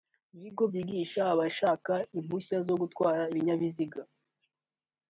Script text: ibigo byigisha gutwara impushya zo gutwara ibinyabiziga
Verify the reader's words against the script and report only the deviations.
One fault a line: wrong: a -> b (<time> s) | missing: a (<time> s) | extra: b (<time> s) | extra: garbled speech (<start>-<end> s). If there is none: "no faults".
wrong: gutwara -> abashaka (1.3 s)